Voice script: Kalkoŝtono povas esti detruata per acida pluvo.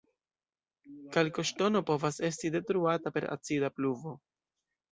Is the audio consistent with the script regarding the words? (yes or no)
yes